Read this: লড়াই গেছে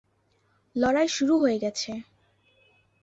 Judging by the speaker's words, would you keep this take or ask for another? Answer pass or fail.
fail